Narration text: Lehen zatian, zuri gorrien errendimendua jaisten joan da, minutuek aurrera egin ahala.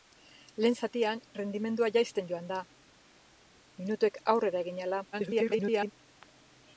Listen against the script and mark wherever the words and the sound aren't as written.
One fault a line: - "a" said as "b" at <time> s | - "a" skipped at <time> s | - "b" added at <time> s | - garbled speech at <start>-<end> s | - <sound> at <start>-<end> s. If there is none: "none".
- "zuri gorrien" skipped at 1.2 s
- garbled speech at 5.1-5.9 s